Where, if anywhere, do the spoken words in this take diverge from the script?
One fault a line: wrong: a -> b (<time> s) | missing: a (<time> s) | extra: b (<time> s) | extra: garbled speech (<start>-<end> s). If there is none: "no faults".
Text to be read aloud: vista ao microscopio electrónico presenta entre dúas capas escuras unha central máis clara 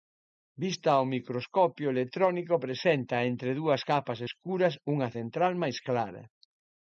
no faults